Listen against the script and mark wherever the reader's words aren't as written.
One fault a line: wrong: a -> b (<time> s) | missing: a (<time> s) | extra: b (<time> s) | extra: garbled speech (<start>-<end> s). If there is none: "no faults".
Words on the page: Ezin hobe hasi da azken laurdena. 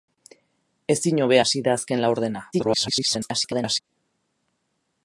extra: garbled speech (2.5-3.8 s)